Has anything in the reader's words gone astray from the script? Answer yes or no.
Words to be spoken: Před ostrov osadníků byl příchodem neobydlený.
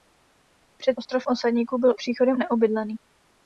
no